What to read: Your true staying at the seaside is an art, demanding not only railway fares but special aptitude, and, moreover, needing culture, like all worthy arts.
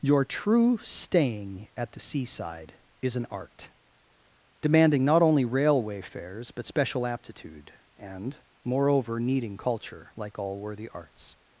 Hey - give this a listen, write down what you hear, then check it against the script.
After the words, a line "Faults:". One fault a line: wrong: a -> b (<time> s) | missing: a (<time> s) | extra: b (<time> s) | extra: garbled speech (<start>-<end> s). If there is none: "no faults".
Your true staying at the seaside is an art, demanding not only railway fares but special aptitude, and, moreover, needing culture, like all worthy arts.
Faults:
no faults